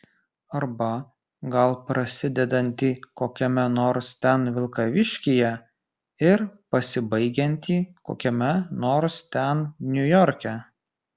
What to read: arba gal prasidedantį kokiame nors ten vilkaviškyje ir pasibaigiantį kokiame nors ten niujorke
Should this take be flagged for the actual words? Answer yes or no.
no